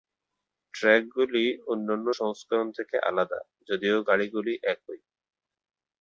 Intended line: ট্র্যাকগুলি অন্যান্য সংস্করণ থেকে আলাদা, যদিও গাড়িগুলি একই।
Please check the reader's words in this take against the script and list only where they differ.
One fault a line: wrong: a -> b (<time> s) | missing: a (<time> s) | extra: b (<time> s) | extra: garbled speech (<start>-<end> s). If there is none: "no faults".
no faults